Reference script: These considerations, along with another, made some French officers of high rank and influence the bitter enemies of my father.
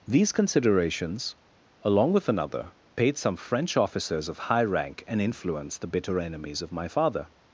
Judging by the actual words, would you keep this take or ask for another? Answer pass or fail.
fail